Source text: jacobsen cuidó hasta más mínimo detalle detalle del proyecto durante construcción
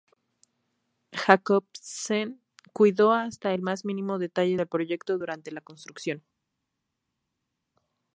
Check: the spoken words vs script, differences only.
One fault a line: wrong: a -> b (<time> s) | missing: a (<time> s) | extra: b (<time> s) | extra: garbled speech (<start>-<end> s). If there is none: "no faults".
extra: el (3.5 s)
missing: detalle (4.6 s)
extra: la (5.5 s)